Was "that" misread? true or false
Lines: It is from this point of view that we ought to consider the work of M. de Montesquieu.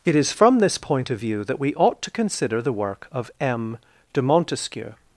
false